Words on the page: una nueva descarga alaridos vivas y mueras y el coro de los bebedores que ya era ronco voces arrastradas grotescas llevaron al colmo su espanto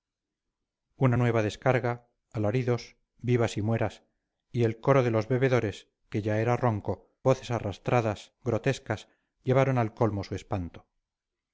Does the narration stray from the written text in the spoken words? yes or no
no